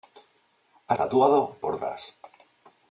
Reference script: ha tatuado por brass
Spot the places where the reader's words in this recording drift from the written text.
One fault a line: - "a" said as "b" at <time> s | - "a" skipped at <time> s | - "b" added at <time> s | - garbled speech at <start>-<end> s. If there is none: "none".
none